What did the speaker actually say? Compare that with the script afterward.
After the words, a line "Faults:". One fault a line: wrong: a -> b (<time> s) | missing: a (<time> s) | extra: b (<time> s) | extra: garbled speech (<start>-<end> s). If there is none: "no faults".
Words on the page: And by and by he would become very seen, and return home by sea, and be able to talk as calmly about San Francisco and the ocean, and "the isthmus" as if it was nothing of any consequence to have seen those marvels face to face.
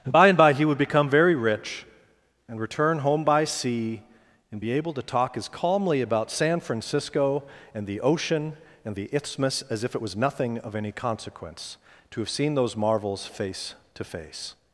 And by and by he would become very rich, and return home by sea, and be able to talk as calmly about San Francisco and the ocean, and "the isthmus" as if it was nothing of any consequence to have seen those marvels face to face.
Faults:
wrong: seen -> rich (1.3 s)